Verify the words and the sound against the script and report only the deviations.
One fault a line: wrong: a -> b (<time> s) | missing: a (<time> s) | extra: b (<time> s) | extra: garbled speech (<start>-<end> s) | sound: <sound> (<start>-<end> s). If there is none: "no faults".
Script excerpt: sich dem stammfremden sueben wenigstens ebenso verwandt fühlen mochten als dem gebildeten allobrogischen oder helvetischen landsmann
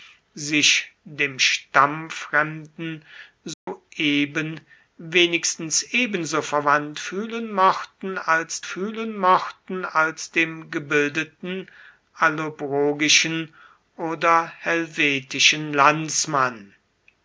sound: dropout (3.5-3.7 s)
extra: fühlen mochten als (8.6 s)